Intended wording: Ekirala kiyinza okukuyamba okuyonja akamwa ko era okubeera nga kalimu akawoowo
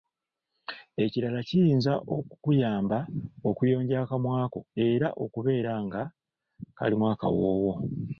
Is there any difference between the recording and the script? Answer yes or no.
no